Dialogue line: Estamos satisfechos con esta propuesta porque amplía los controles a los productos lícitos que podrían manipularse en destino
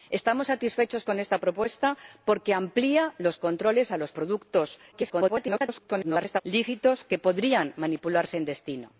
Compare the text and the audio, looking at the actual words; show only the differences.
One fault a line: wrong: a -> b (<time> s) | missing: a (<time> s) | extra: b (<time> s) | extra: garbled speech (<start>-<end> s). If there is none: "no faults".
extra: garbled speech (4.9-6.4 s)